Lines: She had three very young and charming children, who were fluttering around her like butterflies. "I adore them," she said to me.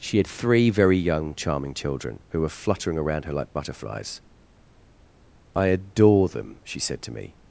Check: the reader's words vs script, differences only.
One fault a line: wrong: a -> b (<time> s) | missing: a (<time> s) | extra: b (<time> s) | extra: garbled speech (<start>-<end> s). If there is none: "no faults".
missing: and (1.4 s)